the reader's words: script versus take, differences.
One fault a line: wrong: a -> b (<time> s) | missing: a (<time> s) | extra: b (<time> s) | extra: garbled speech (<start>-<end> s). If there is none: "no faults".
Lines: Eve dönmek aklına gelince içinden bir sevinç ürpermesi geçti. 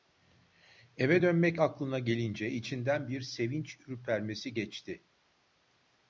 no faults